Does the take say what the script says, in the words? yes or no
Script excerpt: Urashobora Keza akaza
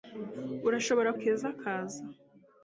yes